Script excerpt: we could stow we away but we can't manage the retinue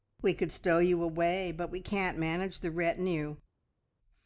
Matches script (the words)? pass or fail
fail